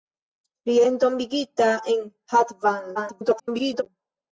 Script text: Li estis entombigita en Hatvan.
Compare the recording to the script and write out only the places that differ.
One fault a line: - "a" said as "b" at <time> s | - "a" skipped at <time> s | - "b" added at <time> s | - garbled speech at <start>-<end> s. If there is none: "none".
- "estis" skipped at 0.8 s
- garbled speech at 3.0-3.8 s